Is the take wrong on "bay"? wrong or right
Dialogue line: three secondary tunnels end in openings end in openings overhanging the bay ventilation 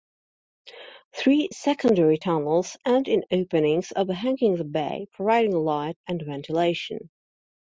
wrong